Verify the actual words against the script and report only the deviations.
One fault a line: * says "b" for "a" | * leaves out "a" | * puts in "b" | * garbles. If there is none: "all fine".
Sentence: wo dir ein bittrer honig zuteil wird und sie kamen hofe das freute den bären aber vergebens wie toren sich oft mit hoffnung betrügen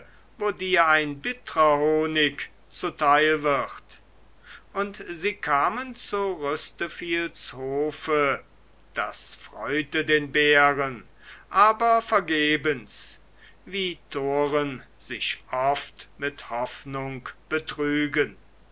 * puts in "zu rüsteviels"